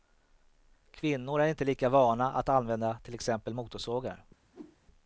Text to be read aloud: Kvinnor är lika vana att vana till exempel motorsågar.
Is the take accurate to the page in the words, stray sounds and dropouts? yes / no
no